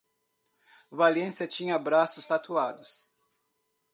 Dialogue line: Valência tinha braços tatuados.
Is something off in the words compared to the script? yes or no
no